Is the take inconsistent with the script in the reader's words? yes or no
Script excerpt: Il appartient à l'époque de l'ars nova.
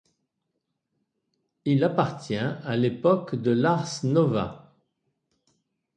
no